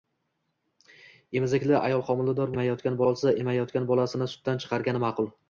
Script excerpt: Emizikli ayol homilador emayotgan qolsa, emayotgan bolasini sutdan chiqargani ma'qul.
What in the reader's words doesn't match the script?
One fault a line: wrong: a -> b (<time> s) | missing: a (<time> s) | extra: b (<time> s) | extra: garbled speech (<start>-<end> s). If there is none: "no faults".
no faults